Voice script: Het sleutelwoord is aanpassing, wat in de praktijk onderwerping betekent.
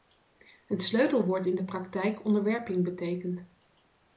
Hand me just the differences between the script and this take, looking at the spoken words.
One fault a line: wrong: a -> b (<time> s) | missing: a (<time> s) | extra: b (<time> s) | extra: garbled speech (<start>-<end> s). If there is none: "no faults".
missing: is aanpassing wat (1.4 s)